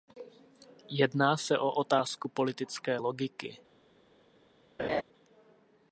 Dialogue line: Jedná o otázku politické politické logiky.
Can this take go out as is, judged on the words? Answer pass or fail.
fail